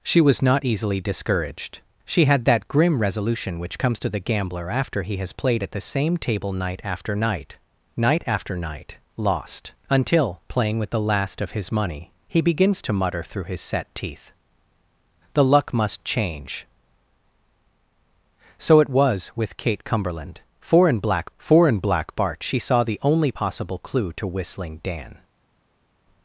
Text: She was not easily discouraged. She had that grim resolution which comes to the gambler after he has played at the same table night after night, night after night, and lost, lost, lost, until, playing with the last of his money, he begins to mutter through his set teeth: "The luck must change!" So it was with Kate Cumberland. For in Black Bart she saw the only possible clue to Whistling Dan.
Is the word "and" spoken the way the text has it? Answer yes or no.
no